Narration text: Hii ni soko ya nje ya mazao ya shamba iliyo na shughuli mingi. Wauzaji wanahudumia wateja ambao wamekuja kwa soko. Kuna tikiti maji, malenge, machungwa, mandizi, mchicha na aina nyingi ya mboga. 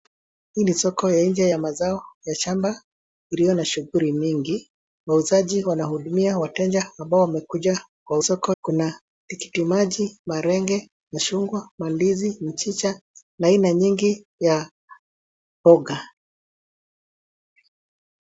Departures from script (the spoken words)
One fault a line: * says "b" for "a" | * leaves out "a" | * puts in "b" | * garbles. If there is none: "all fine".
all fine